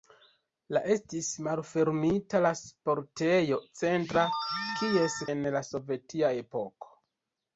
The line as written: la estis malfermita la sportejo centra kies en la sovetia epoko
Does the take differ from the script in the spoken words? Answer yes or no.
no